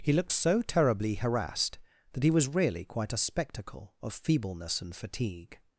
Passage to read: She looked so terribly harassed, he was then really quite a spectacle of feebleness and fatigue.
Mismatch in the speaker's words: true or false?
true